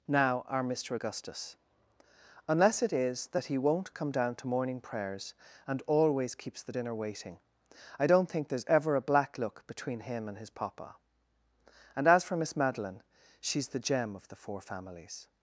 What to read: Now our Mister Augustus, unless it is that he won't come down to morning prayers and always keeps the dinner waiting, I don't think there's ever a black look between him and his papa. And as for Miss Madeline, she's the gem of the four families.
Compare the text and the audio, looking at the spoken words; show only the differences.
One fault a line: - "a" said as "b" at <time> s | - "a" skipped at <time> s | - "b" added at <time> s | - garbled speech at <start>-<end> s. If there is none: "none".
none